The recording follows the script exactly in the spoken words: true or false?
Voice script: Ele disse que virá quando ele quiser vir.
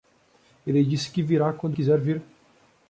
false